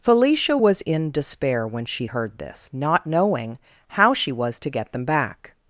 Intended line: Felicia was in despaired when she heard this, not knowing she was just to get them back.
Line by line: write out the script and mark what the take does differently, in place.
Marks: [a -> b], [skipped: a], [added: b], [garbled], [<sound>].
Felicia was in [despaired -> despair] when she heard this, not knowing [added: how] she was [skipped: just] to get them back.